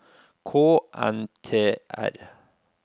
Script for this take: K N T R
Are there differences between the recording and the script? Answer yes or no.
no